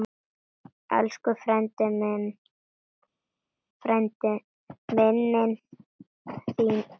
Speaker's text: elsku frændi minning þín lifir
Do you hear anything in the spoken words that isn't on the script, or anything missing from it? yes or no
no